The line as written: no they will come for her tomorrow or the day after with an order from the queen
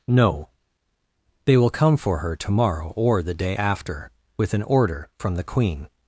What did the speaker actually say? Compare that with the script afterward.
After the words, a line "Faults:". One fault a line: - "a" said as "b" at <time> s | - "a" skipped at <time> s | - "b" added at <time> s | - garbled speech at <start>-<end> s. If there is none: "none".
no they will come for her tomorrow or the day after with an order from the queen
Faults:
none